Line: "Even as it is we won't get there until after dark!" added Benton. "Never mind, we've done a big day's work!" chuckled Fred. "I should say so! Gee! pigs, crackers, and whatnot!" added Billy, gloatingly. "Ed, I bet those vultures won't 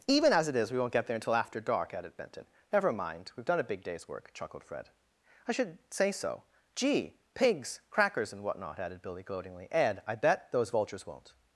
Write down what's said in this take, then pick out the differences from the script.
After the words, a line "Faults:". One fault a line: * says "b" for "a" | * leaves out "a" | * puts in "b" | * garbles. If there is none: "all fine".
"Even as it is we won't get there until after dark!" added Benton. "Never mind, we've done a big day's work!" chuckled Fred. "I should say so! Gee! pigs, crackers, and whatnot!" added Billy, gloatingly. "Ed, I bet those vultures won't
Faults:
all fine